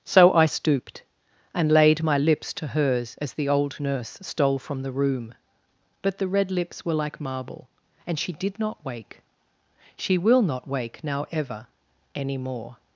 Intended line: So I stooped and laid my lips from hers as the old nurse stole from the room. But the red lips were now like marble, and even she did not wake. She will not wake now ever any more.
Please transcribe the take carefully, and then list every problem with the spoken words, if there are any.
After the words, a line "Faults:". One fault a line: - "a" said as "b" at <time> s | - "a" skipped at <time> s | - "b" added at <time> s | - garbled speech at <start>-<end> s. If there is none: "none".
So I stooped and laid my lips to hers as the old nurse stole from the room. But the red lips were like marble, and she did not wake. She will not wake now ever any more.
Faults:
- "from" said as "to" at 2.5 s
- "now" skipped at 6.9 s
- "even" skipped at 8.2 s